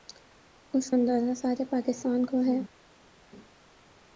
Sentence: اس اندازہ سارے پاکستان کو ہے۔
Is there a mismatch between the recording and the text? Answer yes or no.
no